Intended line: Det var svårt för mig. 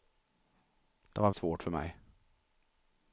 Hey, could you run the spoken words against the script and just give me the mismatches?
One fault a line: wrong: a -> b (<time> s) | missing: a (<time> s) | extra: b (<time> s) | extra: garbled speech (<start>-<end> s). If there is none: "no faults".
no faults